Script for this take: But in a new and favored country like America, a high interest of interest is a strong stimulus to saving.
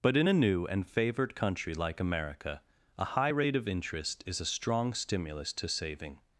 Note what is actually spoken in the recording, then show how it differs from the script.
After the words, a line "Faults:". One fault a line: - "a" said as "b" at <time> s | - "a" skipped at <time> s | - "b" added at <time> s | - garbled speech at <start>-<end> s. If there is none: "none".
But in a new and favored country like America, a high rate of interest is a strong stimulus to saving.
Faults:
- "interest" said as "rate" at 3.3 s